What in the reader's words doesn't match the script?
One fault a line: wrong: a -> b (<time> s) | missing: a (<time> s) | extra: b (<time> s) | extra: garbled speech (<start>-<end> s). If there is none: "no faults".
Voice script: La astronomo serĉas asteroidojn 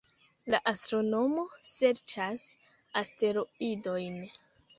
no faults